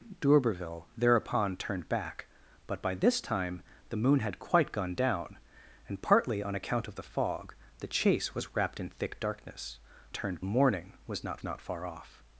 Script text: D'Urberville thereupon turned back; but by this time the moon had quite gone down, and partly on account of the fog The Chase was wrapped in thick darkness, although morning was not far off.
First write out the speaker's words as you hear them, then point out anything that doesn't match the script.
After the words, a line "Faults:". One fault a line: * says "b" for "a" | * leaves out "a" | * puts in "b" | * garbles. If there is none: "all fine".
D'Urberville thereupon turned back; but by this time the moon had quite gone down, and partly on account of the fog The Chase was wrapped in thick darkness, turned morning was not not far off.
Faults:
* says "turned" for "although"
* puts in "not"